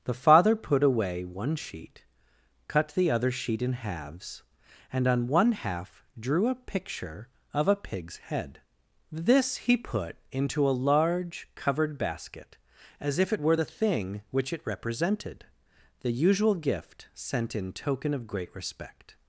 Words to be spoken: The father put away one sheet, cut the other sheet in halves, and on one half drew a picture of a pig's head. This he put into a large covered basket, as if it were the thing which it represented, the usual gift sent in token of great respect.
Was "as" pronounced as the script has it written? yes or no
yes